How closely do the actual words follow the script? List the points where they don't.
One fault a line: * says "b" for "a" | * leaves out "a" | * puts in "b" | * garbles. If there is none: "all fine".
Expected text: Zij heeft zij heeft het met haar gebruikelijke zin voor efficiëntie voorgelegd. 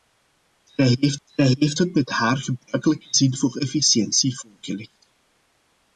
all fine